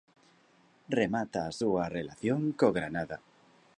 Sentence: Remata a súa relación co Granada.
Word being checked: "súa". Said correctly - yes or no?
yes